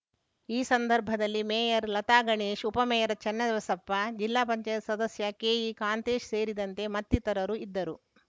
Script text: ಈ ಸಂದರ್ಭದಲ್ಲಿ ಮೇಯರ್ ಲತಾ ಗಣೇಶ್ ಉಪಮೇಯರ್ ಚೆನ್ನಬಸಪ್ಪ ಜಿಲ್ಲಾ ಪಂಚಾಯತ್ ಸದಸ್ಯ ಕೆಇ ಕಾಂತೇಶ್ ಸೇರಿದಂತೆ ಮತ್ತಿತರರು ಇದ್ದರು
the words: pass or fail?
pass